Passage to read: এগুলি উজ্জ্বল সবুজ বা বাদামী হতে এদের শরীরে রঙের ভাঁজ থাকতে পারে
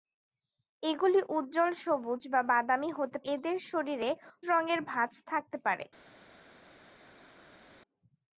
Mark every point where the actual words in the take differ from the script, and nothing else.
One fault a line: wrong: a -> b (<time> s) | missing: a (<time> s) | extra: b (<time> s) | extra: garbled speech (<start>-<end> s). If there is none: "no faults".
no faults